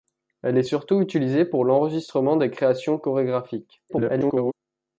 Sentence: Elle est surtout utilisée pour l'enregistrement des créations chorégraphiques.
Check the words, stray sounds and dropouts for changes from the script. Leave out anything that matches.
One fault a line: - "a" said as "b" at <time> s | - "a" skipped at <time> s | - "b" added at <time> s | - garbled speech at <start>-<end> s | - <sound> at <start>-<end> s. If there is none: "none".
- garbled speech at 3.9-4.5 s